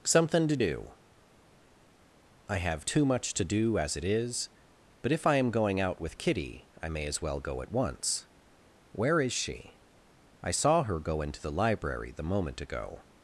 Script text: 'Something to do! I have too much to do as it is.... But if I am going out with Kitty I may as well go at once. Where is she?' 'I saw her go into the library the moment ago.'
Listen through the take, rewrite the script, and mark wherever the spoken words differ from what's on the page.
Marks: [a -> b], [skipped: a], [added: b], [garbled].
'Something to do! I have too much to do as it is.... But if I am going out with Kitty I may as well go at once. Where is she?' 'I saw her go into the library the moment ago.'